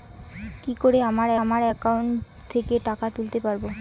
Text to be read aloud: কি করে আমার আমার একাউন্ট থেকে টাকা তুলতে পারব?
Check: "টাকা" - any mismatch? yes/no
no